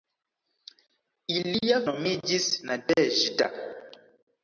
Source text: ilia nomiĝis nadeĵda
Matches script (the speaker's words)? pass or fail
pass